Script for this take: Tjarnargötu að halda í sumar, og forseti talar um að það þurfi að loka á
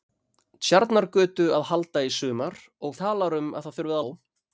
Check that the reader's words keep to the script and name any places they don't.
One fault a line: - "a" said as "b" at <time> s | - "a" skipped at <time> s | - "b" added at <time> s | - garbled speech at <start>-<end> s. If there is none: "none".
- "forseti" skipped at 3.0 s
- "að loka" skipped at 4.0 s